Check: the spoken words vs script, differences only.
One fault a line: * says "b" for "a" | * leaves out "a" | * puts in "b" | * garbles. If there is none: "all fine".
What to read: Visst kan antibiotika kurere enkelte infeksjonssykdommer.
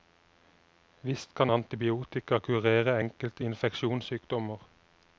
all fine